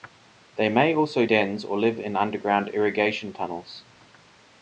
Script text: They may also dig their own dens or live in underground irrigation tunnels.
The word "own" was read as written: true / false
false